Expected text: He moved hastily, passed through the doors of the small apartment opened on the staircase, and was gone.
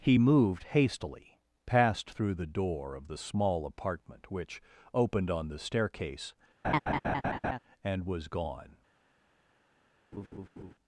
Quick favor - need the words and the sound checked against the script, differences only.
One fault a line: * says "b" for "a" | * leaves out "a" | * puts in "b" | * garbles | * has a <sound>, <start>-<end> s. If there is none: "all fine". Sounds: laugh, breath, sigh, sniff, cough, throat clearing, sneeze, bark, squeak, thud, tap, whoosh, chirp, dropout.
* says "door" for "doors"
* puts in "which"
* has a laugh, 6.6-7.6 s
* has a laugh, 10.1-10.7 s